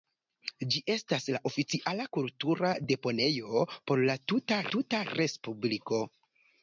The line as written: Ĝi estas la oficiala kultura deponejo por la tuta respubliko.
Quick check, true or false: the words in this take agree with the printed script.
false